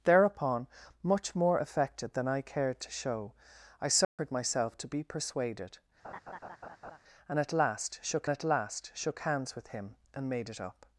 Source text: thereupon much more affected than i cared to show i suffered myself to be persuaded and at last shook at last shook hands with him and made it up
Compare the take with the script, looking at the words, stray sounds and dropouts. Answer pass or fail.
fail